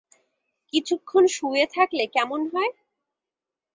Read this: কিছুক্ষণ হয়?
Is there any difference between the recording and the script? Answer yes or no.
yes